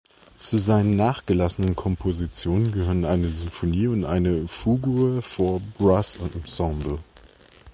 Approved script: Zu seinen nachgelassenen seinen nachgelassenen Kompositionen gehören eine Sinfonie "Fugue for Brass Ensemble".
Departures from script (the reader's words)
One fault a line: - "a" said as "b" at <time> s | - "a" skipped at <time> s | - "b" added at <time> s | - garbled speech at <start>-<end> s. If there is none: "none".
- "seinen nachgelassenen" skipped at 1.8 s
- "und eine" added at 3.9 s